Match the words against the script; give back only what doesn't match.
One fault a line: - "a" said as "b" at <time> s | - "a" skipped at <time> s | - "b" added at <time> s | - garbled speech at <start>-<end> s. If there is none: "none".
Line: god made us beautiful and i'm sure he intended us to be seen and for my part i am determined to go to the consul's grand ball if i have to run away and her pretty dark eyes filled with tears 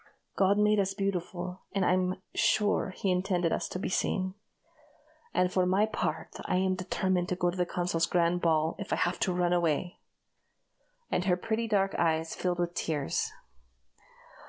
none